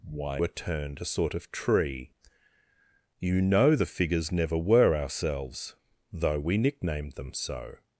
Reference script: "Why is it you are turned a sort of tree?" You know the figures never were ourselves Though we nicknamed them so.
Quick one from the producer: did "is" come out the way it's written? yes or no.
no